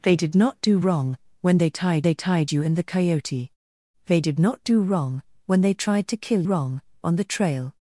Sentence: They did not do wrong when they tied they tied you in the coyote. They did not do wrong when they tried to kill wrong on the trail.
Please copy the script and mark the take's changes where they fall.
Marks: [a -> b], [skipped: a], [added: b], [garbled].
They did not do wrong when they tied they tied you in the coyote. They did not do wrong when they tried to kill wrong on the trail.